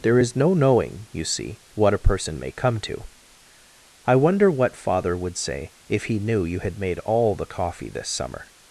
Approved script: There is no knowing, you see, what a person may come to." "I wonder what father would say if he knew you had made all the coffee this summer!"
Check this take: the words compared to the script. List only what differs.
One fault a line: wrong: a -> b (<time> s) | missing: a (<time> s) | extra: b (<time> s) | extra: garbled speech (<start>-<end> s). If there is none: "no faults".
no faults